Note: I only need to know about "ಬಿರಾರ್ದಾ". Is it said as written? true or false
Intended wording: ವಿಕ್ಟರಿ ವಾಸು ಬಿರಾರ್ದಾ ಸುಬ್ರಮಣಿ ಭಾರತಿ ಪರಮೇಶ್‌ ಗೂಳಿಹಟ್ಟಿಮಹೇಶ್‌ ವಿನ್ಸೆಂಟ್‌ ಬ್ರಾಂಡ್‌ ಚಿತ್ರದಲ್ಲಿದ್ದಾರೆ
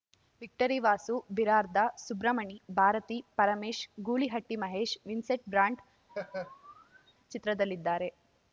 true